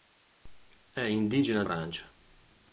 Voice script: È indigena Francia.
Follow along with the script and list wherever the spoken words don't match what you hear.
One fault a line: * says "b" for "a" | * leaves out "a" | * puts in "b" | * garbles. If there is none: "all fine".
all fine